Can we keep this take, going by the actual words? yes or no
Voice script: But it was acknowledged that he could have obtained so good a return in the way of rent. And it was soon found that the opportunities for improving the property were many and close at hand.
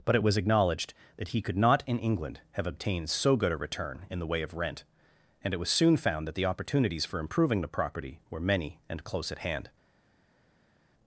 no